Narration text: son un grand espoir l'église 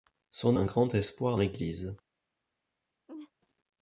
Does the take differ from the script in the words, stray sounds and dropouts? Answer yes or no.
yes